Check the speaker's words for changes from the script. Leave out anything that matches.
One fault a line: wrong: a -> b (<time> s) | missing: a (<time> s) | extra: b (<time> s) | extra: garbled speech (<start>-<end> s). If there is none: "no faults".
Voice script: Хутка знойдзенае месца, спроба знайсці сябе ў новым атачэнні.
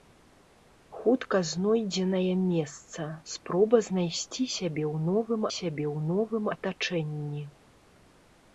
extra: сябе ў новым (5.6 s)